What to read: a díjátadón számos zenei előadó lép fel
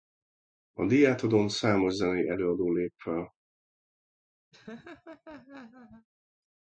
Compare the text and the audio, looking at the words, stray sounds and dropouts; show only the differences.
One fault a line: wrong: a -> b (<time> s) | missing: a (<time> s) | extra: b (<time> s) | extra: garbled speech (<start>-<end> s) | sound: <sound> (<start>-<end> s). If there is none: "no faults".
sound: laugh (4.5-6.1 s)